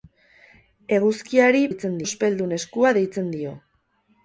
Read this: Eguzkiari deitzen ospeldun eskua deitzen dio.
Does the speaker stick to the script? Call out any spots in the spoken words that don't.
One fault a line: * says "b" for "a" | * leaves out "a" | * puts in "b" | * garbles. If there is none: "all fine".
all fine